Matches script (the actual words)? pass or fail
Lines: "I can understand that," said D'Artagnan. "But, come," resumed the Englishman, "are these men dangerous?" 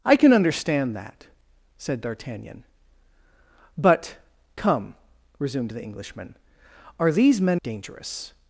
pass